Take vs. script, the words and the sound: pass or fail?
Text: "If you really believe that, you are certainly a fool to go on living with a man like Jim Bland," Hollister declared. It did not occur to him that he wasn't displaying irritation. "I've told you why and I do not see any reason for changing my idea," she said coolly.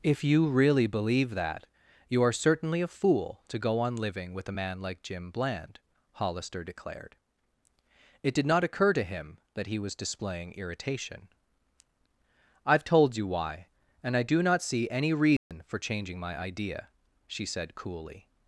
fail